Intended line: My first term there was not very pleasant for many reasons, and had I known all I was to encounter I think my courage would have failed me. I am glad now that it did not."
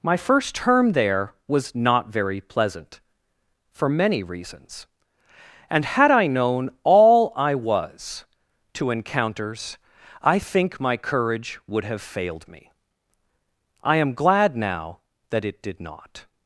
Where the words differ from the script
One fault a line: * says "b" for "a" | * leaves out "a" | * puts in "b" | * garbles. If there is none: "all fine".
* says "encounters" for "encounter"